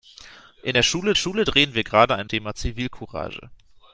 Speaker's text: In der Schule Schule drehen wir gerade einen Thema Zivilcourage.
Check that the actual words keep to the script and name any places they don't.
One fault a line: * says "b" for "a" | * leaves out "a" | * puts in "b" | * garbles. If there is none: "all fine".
all fine